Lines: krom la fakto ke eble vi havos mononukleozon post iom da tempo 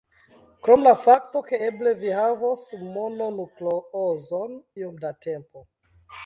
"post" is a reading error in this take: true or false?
true